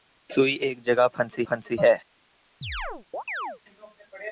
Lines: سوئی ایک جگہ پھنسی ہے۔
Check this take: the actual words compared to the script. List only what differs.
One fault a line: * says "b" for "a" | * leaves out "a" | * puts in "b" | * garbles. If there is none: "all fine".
* puts in "پھنسی"